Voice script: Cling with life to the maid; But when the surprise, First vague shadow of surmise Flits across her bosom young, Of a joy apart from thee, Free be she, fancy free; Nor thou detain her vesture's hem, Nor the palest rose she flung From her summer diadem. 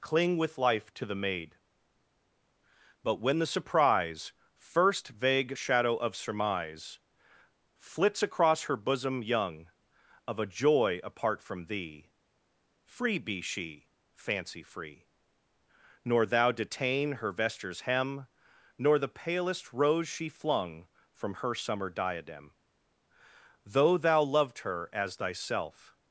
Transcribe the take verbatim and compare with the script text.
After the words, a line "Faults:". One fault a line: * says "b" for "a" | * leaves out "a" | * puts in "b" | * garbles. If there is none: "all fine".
Cling with life to the maid; But when the surprise, First vague shadow of surmise Flits across her bosom young, Of a joy apart from thee, Free be she, fancy free; Nor thou detain her vesture's hem, Nor the palest rose she flung From her summer diadem. Though thou loved her as thyself
Faults:
* puts in "Though thou loved her as thyself"